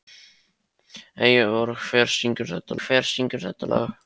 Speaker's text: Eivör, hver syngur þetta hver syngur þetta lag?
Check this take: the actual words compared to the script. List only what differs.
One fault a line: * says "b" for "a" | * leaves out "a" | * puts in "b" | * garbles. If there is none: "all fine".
all fine